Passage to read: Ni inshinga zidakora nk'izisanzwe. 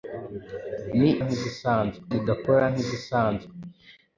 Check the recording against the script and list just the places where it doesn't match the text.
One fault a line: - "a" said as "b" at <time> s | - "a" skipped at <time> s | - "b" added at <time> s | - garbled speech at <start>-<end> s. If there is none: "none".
- "inshinga" said as "nk'izisanzwe" at 1.2 s